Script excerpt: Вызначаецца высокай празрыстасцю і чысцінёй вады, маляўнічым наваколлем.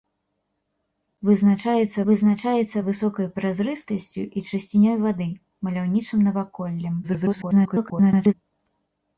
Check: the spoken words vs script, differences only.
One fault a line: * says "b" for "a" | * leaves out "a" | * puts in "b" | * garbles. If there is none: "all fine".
* puts in "вызначаецца"
* garbles